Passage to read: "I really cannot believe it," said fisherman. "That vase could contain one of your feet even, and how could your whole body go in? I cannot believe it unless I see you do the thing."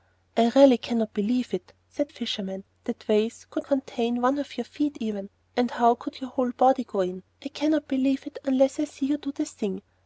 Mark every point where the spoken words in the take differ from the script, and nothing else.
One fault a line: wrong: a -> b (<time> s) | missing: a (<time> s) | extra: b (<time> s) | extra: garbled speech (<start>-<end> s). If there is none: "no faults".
no faults